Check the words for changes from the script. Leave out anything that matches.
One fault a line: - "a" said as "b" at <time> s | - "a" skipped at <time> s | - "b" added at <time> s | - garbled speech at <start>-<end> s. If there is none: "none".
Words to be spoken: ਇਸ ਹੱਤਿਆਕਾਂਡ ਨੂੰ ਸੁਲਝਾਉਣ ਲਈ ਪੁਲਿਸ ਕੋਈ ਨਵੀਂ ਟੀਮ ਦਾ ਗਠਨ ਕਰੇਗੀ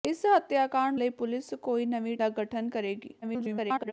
- "ਨੂੰ ਸੁਲਝਾਉਣ" skipped at 0.9 s
- "ਟੀਮ" skipped at 2.2 s
- garbled speech at 3.2-3.9 s